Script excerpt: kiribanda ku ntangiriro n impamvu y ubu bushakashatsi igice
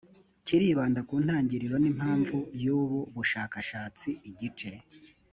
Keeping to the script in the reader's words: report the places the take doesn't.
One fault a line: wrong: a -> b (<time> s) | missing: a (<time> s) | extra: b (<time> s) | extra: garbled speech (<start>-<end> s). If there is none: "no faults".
no faults